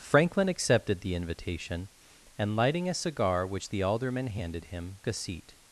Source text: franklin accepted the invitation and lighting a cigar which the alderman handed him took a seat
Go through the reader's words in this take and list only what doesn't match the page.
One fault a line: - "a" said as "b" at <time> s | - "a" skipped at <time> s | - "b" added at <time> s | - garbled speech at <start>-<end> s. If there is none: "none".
- "took" skipped at 5.0 s